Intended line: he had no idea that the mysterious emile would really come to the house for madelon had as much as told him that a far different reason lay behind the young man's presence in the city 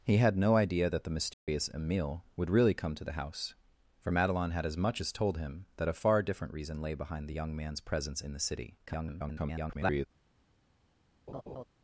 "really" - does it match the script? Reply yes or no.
yes